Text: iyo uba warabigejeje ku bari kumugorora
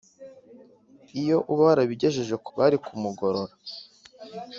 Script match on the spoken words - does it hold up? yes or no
yes